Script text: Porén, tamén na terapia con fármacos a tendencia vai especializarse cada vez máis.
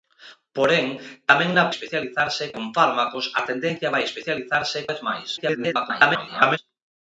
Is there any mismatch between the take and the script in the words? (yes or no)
yes